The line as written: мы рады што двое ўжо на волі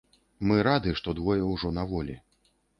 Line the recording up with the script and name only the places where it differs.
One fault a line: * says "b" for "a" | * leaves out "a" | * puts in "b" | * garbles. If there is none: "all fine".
all fine